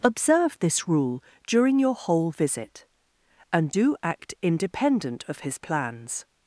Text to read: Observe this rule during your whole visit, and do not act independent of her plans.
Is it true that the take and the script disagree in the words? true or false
true